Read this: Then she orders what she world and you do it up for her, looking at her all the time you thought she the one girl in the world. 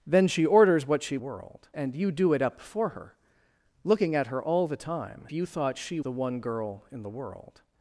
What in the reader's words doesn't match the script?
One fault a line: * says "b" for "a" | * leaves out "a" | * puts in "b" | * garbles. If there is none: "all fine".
all fine